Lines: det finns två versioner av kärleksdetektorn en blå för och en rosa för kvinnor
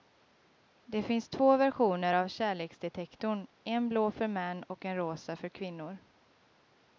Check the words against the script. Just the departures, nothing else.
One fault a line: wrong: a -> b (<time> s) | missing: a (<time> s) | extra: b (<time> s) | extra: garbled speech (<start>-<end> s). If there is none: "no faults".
extra: män (4.3 s)